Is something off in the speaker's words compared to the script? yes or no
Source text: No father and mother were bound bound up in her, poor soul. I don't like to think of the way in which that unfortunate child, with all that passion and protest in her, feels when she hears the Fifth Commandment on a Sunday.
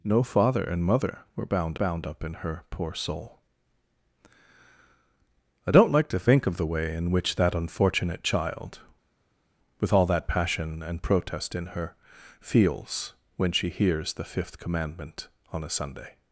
no